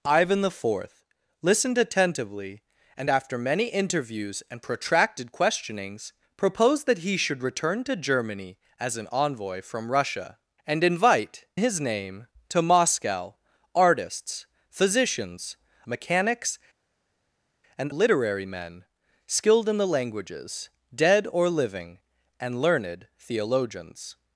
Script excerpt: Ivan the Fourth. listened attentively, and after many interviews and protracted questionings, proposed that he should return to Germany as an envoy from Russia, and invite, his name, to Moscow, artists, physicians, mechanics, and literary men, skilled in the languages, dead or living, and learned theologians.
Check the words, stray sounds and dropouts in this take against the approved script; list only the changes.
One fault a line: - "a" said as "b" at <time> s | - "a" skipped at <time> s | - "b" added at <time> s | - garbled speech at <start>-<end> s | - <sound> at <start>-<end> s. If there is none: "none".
none